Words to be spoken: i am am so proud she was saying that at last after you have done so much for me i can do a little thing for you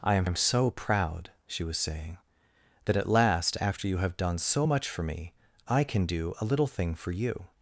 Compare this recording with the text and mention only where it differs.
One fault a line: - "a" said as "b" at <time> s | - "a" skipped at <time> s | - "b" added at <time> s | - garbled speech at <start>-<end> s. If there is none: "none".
none